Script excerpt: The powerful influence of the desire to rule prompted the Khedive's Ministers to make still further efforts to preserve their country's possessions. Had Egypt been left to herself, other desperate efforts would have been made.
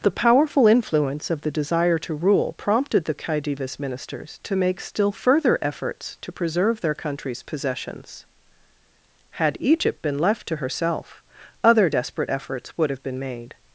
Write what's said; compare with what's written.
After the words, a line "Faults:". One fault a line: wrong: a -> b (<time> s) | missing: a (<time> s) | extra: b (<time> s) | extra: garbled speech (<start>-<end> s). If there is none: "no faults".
The powerful influence of the desire to rule prompted the Khedive's Ministers to make still further efforts to preserve their country's possessions. Had Egypt been left to herself, other desperate efforts would have been made.
Faults:
no faults